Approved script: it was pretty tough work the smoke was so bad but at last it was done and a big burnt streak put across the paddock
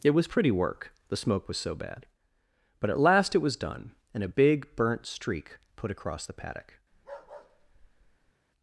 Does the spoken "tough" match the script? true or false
false